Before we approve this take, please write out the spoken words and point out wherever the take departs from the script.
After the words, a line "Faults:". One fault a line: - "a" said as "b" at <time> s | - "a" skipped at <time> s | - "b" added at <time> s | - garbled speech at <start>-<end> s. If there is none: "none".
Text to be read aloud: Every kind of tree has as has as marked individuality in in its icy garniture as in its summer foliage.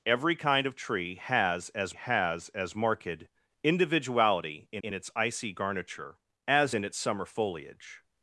Every kind of tree has as has as marked individuality in in its icy garniture as in its summer foliage.
Faults:
none